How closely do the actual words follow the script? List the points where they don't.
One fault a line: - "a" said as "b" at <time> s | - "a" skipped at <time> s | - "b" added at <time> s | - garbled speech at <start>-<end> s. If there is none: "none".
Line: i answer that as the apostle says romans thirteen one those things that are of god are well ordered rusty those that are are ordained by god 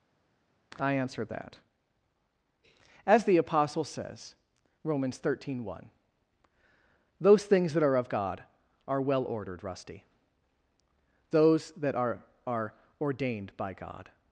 none